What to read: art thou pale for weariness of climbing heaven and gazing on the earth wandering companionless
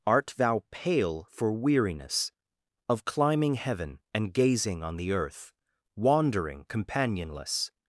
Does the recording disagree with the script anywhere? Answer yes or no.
no